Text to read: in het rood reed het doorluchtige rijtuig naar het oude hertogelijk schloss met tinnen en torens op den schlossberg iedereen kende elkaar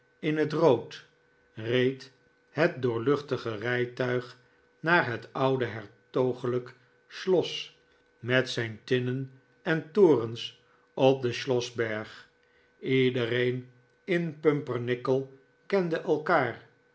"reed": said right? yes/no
yes